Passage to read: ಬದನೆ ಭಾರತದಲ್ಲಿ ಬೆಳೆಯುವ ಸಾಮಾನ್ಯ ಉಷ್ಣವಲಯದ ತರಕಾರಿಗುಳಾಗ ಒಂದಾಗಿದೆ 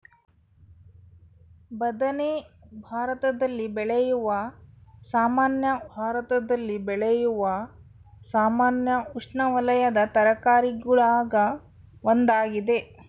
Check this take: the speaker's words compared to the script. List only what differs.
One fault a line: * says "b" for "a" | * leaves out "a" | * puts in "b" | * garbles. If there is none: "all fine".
* puts in "ಭಾರತದಲ್ಲಿ ಬೆಳೆಯುವ ಸಾಮಾನ್ಯ"